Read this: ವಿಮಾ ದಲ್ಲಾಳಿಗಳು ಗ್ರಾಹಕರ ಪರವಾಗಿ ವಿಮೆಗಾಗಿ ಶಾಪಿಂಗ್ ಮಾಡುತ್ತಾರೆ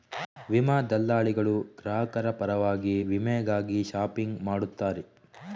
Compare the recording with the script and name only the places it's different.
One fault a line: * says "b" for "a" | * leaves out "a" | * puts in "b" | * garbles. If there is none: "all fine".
all fine